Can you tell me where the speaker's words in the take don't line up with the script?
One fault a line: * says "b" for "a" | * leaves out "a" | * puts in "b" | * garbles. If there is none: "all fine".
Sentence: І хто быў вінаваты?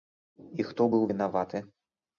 all fine